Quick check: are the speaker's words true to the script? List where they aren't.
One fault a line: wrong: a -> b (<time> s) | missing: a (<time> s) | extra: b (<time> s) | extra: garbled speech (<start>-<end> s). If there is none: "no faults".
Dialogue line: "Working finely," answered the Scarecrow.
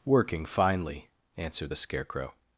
no faults